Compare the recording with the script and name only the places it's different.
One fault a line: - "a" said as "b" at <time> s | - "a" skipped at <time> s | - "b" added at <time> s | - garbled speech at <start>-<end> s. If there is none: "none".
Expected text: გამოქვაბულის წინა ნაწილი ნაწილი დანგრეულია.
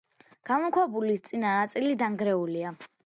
- "ნაწილი" skipped at 1.9 s